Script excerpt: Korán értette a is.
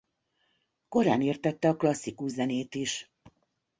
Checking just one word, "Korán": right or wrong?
right